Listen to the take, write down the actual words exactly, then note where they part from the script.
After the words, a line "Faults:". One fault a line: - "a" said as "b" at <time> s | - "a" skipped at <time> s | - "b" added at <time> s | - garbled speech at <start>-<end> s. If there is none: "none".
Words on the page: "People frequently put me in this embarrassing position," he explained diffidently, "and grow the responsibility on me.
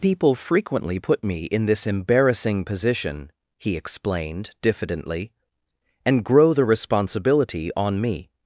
"People frequently put me in this embarrassing position," he explained diffidently, "and grow the responsibility on me.
Faults:
none